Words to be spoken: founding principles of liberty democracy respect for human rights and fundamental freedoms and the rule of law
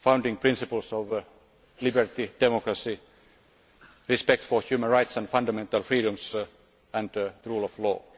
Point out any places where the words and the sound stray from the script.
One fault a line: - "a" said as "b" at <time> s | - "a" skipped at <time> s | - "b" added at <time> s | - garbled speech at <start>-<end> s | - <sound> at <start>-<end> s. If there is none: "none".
none